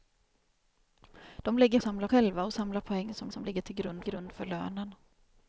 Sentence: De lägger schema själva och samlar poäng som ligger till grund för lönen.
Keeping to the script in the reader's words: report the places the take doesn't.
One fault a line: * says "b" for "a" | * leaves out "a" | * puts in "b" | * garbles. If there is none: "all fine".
* says "samlar" for "schema"
* puts in "som"
* puts in "grund"